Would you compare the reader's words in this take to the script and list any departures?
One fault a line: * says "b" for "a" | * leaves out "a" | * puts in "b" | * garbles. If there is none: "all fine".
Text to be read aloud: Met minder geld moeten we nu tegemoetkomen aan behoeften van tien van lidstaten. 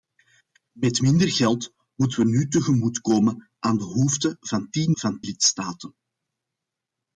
all fine